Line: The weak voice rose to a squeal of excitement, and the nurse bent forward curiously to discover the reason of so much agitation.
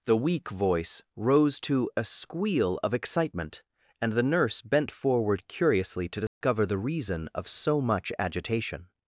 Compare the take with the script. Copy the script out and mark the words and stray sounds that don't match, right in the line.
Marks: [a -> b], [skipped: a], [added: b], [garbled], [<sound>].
The weak voice rose to a squeal of excitement, and the nurse bent forward curiously to discover [dropout] the reason of so much agitation.